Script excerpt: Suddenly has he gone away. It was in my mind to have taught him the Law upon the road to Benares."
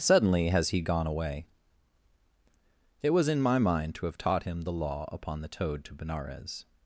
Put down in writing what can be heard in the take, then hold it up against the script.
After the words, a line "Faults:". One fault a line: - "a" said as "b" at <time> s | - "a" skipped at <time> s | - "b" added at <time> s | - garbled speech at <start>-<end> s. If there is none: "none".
Suddenly has he gone away. It was in my mind to have taught him the Law upon the toad to Benares."
Faults:
- "road" said as "toad" at 5.5 s